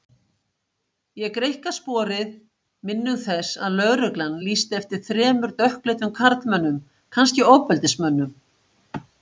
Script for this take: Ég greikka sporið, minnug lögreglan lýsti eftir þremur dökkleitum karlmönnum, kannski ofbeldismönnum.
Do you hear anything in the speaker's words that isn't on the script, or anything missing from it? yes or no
yes